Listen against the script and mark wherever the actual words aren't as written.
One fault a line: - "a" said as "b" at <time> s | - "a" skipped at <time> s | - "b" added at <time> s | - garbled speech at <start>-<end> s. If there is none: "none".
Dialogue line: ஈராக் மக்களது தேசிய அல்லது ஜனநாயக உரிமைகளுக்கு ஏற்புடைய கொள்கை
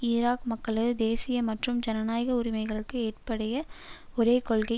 - "அல்லது" said as "மற்றும்" at 1.5 s
- "ஒரே" added at 4.2 s